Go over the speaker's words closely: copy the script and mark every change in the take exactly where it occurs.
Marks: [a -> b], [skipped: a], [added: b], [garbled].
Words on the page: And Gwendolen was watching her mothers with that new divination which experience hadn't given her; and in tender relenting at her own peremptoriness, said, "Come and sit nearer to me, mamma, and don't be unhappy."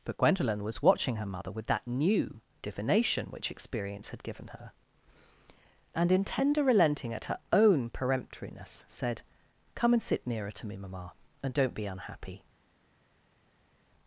[And -> But] Gwendolen was watching her [mothers -> mother] with that new divination which experience [hadn't -> had] given her; and in tender relenting at her own peremptoriness, said, "Come and sit nearer to me, mamma, and don't be unhappy."